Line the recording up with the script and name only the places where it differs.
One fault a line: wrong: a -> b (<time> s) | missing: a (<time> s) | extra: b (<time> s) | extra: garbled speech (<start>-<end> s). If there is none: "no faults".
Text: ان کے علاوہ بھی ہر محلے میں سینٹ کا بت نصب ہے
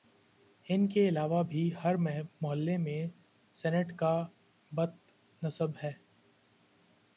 no faults